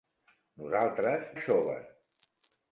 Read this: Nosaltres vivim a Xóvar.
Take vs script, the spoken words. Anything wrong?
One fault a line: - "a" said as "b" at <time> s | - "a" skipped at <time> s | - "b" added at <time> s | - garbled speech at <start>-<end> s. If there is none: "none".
- "vivim" skipped at 1.3 s